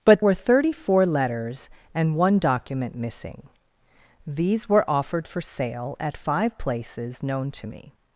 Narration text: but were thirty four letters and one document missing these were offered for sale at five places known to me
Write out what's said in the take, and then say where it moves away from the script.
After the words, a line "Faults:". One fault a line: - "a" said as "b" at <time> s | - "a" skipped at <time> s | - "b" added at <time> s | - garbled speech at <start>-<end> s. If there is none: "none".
but were thirty four letters and one document missing these were offered for sale at five places known to me
Faults:
none